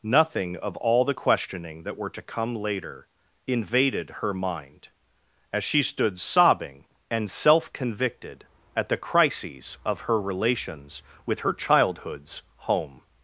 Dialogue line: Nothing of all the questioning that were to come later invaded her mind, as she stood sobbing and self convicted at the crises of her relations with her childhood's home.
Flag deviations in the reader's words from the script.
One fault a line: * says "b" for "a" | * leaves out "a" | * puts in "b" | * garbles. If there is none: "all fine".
all fine